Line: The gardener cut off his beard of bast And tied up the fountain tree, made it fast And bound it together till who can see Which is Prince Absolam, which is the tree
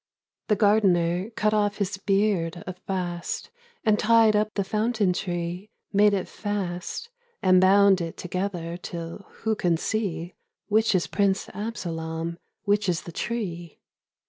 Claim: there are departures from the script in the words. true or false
false